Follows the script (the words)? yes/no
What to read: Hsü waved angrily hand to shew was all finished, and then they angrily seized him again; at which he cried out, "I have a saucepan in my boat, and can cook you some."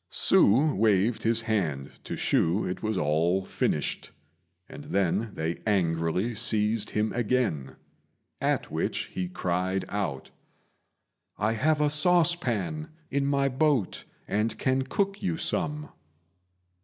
no